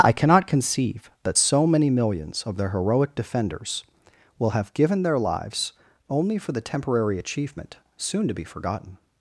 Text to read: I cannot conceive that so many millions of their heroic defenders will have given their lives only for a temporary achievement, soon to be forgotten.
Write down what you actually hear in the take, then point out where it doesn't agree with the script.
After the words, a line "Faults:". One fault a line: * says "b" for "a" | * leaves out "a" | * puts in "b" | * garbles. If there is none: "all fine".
I cannot conceive that so many millions of their heroic defenders will have given their lives only for the temporary achievement, soon to be forgotten.
Faults:
* says "the" for "a"